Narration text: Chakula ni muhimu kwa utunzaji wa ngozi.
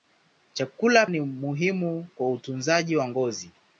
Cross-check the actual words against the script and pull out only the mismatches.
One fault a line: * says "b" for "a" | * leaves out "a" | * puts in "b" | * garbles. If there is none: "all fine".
all fine